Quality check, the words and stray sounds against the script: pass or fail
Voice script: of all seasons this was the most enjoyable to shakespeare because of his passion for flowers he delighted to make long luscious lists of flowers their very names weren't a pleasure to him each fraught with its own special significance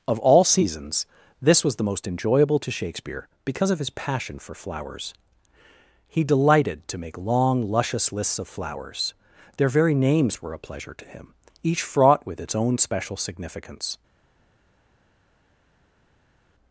fail